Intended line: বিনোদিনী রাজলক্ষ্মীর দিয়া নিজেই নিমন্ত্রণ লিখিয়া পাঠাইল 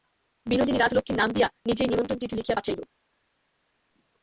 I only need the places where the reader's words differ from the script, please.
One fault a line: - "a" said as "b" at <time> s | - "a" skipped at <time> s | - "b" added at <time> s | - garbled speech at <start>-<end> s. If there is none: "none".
- "নাম" added at 1.2 s
- "চিঠি" added at 2.2 s